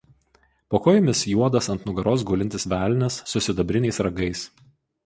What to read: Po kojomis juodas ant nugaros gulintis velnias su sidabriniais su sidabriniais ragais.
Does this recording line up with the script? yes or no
no